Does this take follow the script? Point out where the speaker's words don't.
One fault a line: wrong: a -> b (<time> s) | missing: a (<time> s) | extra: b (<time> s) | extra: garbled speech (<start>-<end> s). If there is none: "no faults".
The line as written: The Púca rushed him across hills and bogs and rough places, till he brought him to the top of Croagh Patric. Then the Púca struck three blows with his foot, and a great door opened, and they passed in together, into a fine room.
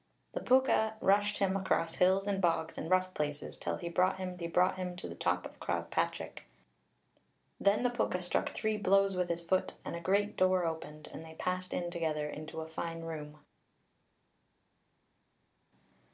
extra: he brought him (4.4 s)